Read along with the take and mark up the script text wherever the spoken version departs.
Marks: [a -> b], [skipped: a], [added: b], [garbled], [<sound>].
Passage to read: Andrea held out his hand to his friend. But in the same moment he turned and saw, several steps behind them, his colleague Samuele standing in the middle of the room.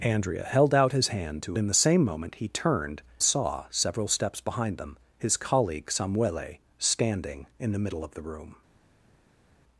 Andrea held out his hand to [skipped: his friend. But] in the same moment he turned [skipped: and] saw, several steps behind them, his colleague Samuele standing in the middle of the room.